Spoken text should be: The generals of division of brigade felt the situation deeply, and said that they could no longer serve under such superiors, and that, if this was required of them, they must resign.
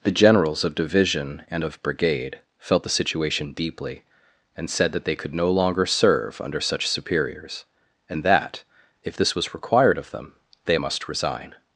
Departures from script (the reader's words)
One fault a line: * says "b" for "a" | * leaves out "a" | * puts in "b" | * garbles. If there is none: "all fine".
* puts in "and"